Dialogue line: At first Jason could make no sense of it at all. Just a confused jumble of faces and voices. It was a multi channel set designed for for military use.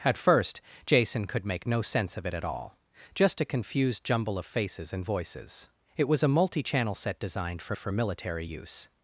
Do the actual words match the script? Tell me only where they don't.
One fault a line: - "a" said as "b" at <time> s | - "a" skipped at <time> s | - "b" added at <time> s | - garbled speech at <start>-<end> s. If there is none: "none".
none